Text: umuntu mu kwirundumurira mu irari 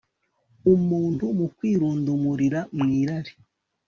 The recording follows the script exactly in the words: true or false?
true